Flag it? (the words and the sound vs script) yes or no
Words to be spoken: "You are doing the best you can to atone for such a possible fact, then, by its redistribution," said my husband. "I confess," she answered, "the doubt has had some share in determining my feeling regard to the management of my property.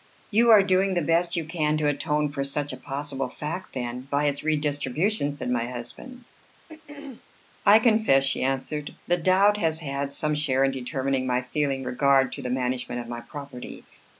yes